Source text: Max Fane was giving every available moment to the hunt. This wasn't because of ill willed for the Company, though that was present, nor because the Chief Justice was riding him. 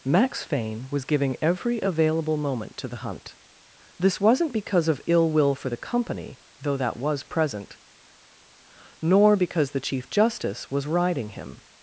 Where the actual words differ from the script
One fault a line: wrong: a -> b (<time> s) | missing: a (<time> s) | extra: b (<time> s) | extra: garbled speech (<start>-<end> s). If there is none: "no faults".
wrong: willed -> will (5.3 s)